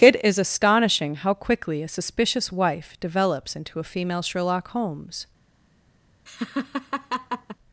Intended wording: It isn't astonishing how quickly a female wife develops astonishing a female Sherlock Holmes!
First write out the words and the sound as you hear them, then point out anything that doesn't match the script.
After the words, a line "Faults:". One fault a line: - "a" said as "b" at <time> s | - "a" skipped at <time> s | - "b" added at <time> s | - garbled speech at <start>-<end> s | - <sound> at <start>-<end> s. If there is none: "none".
It is astonishing how quickly a suspicious wife develops into a female Sherlock Holmes!
Faults:
- "isn't" said as "is" at 0.2 s
- "female" said as "suspicious" at 1.9 s
- "astonishing" said as "into" at 3.5 s
- laugh at 6.3-7.6 s